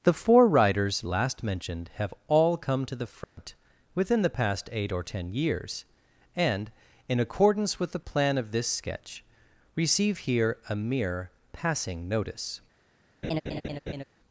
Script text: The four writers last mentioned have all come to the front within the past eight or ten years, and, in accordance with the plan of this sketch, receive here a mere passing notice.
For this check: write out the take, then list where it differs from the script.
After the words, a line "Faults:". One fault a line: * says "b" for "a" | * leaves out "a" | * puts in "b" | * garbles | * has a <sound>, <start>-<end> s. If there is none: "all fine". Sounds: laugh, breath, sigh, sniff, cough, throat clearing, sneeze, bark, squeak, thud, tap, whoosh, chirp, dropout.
The four writers last mentioned have all come to the front within the past eight or ten years, and, in accordance with the plan of this sketch, receive here a mere passing notice.
Faults:
* has a dropout, 3.2-3.4 s
* has a laugh, 13.2-14.0 s